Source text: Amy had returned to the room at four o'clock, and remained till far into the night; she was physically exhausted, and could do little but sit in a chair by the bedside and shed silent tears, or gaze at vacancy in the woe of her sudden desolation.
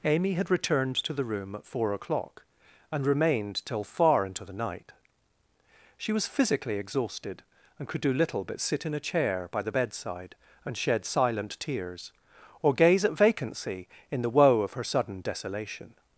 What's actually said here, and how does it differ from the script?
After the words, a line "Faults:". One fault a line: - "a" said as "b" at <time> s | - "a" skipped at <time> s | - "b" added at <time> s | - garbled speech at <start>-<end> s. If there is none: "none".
Amy had returned to the room at four o'clock, and remained till far into the night; she was physically exhausted, and could do little but sit in a chair by the bedside and shed silent tears, or gaze at vacancy in the woe of her sudden desolation.
Faults:
none